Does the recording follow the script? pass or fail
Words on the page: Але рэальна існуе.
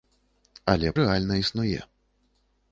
pass